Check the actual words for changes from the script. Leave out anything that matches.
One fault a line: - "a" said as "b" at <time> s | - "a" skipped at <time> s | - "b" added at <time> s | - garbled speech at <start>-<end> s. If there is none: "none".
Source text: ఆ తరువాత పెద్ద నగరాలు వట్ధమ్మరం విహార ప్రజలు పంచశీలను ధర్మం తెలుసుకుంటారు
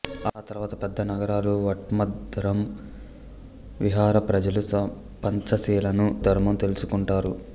none